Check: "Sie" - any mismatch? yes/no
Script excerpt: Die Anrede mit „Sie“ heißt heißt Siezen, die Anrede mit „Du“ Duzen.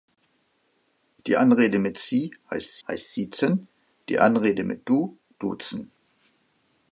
no